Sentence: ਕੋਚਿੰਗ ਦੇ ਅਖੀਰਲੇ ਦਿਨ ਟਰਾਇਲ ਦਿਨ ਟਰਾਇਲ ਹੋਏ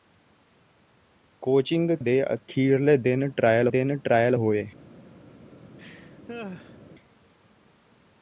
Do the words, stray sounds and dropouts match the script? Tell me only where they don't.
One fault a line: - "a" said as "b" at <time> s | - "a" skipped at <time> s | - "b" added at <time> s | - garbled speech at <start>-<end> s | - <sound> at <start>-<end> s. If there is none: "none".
- laugh at 5.8-6.8 s